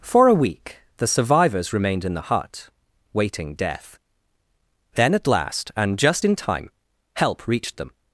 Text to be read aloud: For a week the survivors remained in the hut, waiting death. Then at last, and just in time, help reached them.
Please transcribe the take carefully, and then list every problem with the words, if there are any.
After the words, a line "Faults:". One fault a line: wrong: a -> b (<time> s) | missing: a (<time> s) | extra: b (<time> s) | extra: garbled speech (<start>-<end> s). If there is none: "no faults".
For a week the survivors remained in the hut, waiting death. Then at last, and just in time, help reached them.
Faults:
no faults